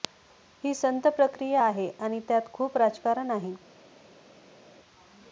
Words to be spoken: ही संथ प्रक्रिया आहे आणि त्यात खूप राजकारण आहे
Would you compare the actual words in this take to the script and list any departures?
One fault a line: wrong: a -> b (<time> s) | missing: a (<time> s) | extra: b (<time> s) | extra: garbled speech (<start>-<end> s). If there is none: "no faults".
no faults